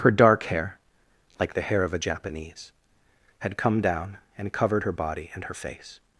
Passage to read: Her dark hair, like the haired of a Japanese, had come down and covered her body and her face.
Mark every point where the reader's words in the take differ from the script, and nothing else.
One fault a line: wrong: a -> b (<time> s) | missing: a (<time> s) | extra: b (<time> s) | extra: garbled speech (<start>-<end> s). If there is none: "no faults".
wrong: haired -> hair (1.6 s)